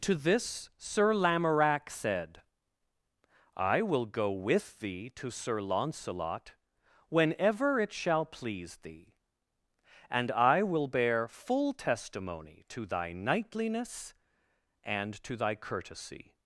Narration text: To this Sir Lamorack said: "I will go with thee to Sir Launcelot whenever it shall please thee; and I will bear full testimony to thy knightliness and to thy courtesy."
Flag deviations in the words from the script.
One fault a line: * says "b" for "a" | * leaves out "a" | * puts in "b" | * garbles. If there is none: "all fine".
all fine